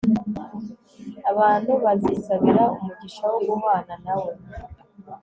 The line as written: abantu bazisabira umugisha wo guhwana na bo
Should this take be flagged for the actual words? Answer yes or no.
yes